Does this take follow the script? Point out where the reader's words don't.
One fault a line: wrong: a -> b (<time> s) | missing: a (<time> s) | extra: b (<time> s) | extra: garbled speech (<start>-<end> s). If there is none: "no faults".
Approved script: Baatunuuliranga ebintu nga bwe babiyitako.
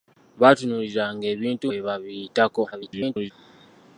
missing: nga (1.6 s)
extra: garbled speech (2.7-3.3 s)